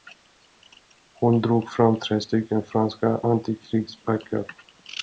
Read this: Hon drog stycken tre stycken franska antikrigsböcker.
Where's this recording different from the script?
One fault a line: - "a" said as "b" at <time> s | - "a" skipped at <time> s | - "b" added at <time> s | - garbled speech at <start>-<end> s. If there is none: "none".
- "stycken" said as "fram" at 1.7 s